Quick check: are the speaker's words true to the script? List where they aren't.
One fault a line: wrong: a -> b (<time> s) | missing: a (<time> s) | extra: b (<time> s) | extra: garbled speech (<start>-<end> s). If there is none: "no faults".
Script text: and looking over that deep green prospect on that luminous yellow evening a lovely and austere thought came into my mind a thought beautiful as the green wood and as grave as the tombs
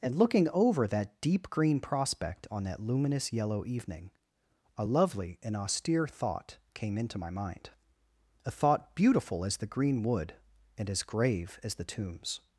no faults